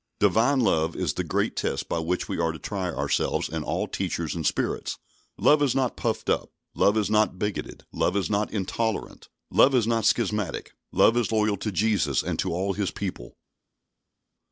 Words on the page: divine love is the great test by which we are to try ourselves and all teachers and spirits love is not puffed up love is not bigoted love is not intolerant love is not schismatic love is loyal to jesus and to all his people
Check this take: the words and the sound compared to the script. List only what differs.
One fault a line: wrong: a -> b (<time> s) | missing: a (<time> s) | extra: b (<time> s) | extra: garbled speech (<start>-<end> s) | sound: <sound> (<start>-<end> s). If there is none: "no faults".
no faults